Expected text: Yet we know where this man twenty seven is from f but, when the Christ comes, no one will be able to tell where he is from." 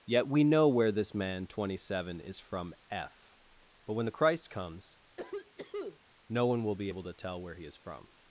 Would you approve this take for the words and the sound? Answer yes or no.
no